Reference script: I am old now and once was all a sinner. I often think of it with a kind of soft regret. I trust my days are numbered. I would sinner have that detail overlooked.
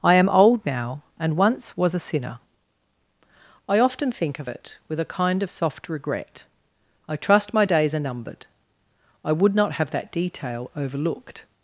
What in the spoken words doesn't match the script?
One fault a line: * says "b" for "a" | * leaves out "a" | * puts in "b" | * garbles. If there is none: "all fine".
* leaves out "all"
* says "not" for "sinner"